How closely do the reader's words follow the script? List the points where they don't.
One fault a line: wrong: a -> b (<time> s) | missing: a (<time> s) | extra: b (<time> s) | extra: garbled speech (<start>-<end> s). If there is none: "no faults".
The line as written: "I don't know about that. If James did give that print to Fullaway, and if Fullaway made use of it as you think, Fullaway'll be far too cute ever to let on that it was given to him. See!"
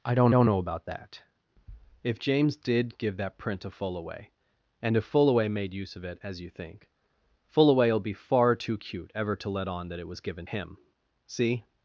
extra: don't (0.3 s)
missing: to (10.4 s)